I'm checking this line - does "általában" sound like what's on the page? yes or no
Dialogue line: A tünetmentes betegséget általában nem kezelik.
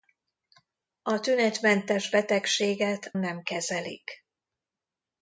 no